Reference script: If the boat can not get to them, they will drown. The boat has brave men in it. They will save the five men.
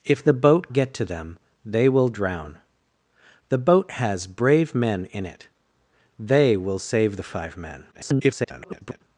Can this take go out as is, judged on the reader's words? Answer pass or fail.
fail